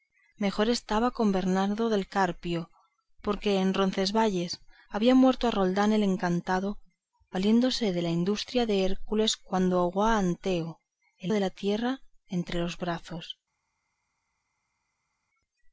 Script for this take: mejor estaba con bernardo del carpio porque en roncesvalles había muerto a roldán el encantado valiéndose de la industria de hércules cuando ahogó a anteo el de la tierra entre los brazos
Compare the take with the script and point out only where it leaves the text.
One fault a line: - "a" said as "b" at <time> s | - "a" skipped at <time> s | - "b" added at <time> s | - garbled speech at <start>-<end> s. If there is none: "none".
none